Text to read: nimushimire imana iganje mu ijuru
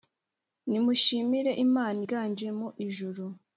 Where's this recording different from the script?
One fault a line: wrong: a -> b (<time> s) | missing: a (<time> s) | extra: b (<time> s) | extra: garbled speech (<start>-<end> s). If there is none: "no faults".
no faults